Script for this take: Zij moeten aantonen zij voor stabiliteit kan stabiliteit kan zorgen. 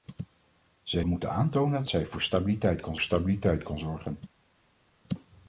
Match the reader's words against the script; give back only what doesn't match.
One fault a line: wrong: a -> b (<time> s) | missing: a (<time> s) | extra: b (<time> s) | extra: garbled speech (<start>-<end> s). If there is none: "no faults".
no faults